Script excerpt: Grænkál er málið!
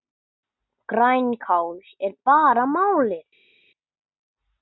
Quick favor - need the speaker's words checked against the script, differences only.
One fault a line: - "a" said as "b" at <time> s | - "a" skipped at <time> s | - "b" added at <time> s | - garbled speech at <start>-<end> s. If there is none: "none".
- "bara" added at 2.2 s